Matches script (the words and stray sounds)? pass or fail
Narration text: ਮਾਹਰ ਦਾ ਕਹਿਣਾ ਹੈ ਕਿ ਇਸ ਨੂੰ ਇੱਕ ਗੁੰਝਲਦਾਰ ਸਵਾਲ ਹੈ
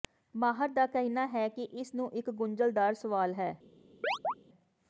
fail